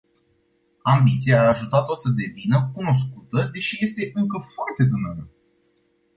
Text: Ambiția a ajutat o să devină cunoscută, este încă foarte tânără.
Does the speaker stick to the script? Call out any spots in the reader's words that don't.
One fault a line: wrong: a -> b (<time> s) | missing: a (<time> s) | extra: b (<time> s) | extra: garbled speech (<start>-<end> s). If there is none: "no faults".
extra: deși (3.5 s)